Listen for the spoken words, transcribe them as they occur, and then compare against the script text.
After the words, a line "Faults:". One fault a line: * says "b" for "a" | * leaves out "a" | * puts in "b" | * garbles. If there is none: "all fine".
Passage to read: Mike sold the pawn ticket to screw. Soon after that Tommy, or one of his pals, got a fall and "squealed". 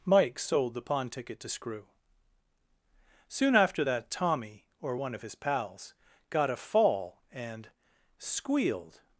Mike sold the pawn ticket to screw. Soon after that Tommy, or one of his pals, got a fall and "squealed".
Faults:
all fine